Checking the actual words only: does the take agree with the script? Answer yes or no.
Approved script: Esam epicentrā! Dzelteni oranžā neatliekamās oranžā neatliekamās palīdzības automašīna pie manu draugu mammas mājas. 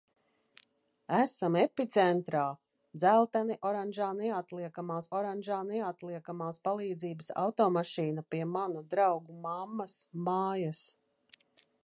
yes